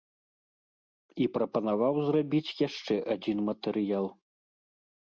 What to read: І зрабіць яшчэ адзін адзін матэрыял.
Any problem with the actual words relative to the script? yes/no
yes